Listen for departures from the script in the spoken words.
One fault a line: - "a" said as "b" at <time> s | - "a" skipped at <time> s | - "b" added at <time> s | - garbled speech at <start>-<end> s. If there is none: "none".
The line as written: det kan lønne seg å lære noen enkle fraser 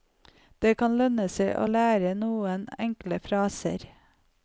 none